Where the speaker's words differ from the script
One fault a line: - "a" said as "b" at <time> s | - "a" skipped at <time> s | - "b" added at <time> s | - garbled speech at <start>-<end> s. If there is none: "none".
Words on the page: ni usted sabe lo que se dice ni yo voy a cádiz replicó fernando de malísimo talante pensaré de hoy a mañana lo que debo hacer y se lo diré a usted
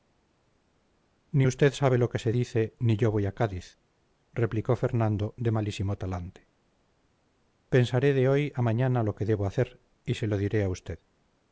none